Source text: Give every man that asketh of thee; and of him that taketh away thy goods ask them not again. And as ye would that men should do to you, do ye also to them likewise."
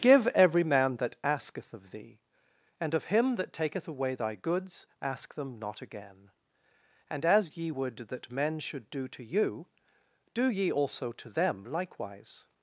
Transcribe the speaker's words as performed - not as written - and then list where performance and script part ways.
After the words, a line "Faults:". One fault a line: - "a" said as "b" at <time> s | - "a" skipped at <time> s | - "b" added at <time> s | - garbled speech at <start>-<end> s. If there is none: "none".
Give every man that asketh of thee; and of him that taketh away thy goods ask them not again. And as ye would that men should do to you, do ye also to them likewise."
Faults:
none